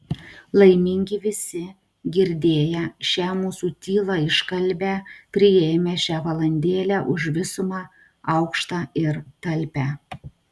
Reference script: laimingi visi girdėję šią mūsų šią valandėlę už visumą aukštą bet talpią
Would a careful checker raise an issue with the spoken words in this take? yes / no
yes